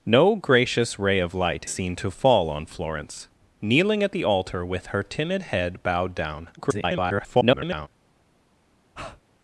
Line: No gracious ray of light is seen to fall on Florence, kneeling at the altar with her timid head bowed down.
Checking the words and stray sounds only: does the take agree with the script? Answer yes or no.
no